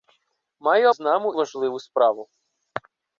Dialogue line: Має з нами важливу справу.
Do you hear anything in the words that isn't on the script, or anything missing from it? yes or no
no